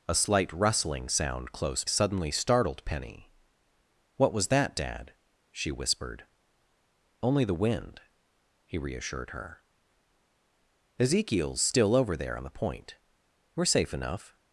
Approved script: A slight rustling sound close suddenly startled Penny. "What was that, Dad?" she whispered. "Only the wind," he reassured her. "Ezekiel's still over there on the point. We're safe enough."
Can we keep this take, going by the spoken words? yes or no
yes